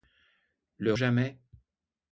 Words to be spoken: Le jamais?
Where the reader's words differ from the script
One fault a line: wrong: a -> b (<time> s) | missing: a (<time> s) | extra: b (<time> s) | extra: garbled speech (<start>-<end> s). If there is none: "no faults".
no faults